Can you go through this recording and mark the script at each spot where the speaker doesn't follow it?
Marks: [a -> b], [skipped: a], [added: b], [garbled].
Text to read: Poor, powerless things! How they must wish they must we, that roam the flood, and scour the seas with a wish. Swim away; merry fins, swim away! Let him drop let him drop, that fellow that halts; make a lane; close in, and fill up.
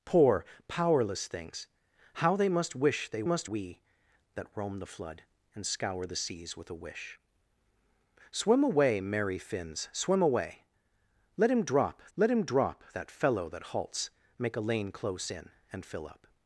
Poor, powerless things! How they must wish they must we, that roam the flood, and scour the seas with a wish. Swim away; merry fins, swim away! Let him drop let him drop, that fellow that halts; make a lane; close in, and fill up.